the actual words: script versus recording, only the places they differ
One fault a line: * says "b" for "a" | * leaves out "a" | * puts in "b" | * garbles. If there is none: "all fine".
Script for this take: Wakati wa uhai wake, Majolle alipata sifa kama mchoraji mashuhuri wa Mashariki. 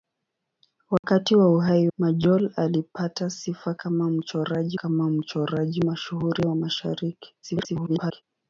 * leaves out "wake"
* puts in "kama mchoraji"
* garbles